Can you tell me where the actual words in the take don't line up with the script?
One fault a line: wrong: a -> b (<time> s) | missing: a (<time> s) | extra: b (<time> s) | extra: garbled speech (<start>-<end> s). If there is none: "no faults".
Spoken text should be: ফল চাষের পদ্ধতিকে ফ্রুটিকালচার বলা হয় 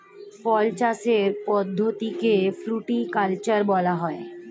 no faults